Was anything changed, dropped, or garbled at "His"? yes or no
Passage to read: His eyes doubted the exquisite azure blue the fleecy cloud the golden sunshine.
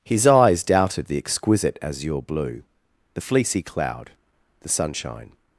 no